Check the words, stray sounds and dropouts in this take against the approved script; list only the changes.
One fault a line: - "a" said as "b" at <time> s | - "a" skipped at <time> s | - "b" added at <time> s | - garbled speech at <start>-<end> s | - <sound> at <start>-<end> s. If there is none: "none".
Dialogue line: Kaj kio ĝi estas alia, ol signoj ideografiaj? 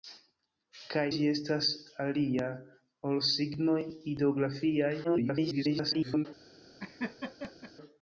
- "kio" skipped at 1.0 s
- garbled speech at 5.0-6.3 s
- laugh at 6.8-7.7 s